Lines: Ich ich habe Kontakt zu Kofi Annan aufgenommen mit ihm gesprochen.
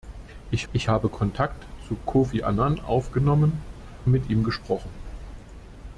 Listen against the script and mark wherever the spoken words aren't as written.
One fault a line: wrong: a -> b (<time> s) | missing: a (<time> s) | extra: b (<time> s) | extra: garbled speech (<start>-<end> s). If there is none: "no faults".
no faults